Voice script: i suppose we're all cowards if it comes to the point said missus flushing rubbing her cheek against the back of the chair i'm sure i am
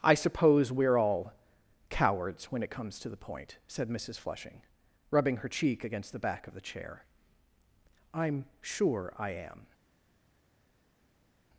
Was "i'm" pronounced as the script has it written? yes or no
yes